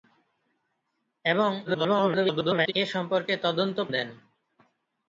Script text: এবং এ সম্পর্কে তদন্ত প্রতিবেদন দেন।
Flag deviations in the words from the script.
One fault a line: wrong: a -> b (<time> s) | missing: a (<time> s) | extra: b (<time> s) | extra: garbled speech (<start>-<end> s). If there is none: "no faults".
extra: garbled speech (1.7-2.7 s)
missing: প্রতিবেদন (3.8 s)